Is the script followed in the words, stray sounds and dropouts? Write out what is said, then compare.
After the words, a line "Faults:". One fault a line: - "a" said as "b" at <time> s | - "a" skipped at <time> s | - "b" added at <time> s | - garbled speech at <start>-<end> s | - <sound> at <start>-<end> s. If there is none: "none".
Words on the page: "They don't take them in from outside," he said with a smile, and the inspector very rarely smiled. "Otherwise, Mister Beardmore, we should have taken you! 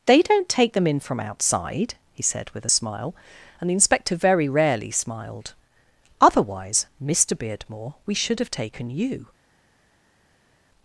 "They don't take them in from outside," he said with a smile, and the inspector very rarely smiled. "Otherwise, Mister Beardmore, we should have taken you!
Faults:
none